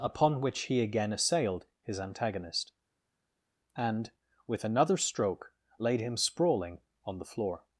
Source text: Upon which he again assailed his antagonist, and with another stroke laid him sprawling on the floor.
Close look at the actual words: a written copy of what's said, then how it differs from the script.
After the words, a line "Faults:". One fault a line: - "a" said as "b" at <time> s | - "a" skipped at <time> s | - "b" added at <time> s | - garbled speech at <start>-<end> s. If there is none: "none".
Upon which he again assailed his antagonist, and with another stroke laid him sprawling on the floor.
Faults:
none